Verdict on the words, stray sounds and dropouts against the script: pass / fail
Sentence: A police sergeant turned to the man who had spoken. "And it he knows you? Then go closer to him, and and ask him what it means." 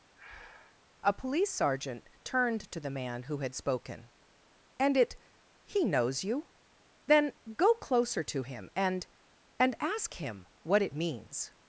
fail